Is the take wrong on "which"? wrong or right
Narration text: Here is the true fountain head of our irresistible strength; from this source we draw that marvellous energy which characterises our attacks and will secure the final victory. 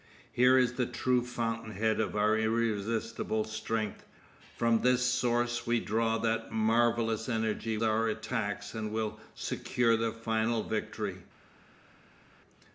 wrong